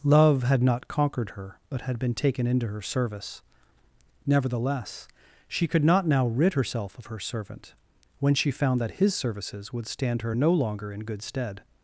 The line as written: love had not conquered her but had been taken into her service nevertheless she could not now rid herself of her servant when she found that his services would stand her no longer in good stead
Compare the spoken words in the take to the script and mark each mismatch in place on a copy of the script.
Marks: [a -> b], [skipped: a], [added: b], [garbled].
love had not conquered her but had been taken into her service nevertheless she could not now rid herself of her servant when she found that his services would stand her no longer in good stead